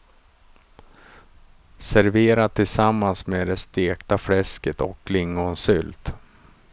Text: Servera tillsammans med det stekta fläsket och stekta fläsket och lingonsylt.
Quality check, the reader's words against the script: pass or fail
fail